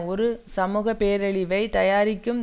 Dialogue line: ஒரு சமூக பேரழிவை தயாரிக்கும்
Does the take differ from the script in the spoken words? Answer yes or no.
no